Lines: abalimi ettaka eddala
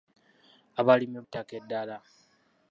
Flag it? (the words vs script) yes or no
no